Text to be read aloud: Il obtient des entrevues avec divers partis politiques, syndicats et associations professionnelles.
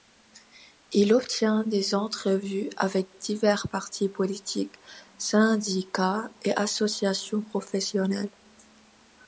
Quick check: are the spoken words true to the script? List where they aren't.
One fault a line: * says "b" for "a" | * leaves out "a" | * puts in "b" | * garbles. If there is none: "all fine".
all fine